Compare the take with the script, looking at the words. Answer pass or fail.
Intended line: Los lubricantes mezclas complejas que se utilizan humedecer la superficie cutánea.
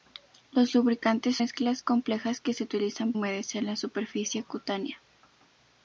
pass